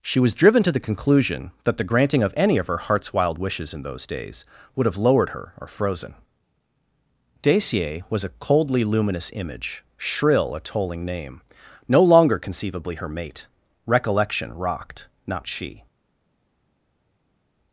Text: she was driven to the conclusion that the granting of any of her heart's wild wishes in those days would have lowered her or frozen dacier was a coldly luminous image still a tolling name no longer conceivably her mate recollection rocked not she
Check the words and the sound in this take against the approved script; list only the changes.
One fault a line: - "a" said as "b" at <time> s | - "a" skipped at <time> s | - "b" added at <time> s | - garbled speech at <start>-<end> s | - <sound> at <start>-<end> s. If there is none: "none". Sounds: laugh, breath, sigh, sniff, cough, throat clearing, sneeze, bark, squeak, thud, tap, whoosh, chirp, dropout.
- "still" said as "shrill" at 10.0 s